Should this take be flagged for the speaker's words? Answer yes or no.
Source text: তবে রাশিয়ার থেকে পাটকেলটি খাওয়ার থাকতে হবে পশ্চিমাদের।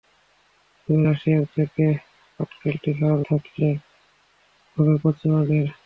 no